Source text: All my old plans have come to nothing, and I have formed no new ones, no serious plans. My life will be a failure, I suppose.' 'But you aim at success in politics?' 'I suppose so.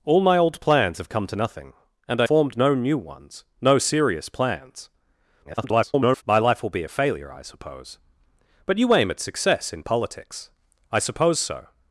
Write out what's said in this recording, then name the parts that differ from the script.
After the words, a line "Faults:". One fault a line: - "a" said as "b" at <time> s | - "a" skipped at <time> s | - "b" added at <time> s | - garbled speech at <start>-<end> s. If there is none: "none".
All my old plans have come to nothing, and I formed no new ones, no serious plans. [garbled] My life will be a failure, I suppose.' 'But you aim at success in politics?' 'I suppose so.
Faults:
- "have" skipped at 2.3 s
- garbled speech at 5.4-6.2 s